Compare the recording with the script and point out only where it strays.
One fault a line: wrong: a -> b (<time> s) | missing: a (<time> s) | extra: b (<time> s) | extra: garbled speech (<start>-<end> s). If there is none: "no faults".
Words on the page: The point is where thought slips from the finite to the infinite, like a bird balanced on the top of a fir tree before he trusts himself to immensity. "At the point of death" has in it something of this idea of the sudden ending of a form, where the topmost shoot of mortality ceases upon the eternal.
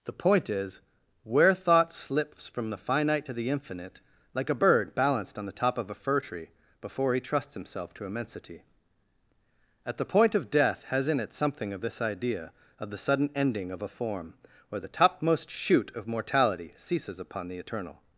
no faults